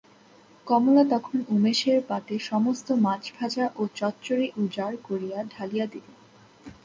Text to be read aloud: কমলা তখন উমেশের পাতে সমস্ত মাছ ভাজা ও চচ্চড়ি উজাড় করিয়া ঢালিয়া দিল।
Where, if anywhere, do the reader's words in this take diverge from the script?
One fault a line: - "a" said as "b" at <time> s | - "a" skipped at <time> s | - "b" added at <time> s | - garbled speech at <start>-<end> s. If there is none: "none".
none